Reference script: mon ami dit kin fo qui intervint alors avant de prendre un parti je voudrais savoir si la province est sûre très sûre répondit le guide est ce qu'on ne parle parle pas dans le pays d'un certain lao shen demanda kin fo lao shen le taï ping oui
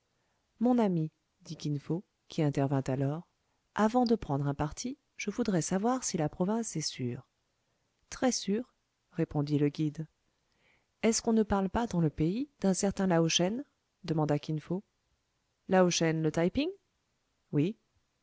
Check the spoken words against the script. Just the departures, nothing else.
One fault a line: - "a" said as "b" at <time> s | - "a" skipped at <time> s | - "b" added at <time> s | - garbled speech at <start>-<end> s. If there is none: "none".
- "parle" skipped at 11.7 s